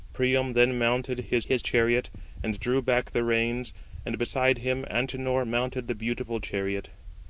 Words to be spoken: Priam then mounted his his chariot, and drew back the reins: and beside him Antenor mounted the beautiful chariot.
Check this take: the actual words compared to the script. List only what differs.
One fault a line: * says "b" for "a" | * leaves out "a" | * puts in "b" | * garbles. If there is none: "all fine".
all fine